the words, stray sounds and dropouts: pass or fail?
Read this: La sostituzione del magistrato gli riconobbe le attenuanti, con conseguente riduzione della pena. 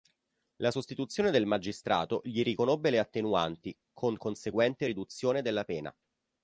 pass